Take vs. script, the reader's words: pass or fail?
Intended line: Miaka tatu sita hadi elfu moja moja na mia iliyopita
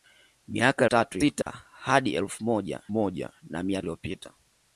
pass